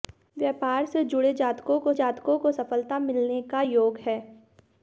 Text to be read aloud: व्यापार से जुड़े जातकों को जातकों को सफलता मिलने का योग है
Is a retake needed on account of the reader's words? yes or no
no